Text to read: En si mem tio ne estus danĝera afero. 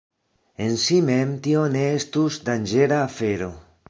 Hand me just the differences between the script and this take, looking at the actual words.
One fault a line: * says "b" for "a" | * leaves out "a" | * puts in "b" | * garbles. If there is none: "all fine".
all fine